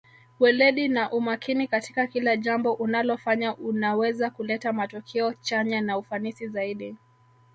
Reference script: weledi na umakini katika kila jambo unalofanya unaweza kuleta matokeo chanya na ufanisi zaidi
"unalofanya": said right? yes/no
yes